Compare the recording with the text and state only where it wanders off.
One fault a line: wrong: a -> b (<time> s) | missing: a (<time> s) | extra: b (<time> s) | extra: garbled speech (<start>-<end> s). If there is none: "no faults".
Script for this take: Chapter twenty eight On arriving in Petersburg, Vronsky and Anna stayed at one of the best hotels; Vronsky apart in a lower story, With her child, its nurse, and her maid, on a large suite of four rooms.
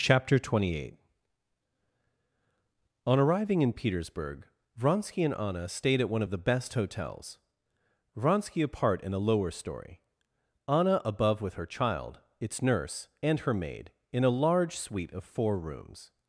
extra: Anna above (10.7 s)
wrong: on -> in (14.1 s)